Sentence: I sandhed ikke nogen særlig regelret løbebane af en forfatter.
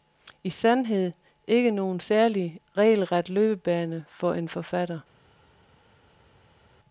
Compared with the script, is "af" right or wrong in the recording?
wrong